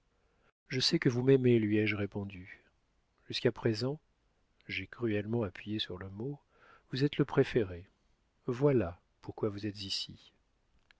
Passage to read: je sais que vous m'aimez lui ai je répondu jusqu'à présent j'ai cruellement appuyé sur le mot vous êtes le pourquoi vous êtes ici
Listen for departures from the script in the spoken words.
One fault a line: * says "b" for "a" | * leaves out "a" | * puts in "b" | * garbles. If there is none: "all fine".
* puts in "préféré voilà"